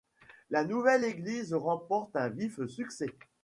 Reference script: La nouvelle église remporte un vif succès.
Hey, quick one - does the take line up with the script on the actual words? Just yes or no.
yes